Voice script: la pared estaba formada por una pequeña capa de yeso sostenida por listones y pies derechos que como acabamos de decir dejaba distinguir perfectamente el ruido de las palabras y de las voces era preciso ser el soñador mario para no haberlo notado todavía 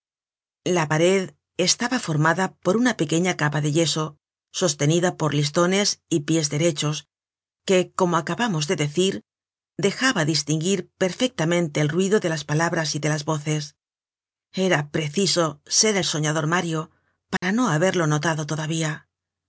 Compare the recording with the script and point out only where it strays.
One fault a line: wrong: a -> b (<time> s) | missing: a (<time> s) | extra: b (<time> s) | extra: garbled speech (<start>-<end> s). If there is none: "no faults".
no faults